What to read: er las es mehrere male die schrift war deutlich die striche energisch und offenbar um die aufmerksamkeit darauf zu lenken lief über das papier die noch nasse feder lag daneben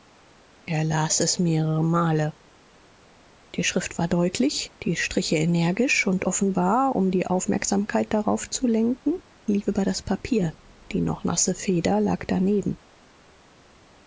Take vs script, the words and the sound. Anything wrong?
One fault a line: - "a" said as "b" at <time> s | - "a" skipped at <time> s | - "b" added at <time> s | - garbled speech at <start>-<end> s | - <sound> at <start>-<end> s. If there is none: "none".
none